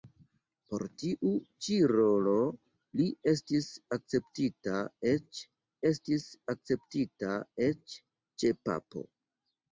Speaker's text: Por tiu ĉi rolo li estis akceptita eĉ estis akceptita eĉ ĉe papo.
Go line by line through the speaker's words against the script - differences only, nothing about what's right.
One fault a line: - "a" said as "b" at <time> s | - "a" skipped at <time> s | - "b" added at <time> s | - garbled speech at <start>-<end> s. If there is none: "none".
none